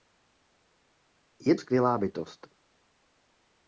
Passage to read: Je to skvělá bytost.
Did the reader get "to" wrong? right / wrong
wrong